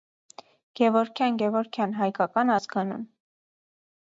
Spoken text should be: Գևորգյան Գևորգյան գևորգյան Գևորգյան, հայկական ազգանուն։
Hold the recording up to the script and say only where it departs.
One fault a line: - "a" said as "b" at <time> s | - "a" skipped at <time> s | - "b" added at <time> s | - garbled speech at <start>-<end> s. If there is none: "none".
- "գևորգյան Գևորգյան" skipped at 2.0 s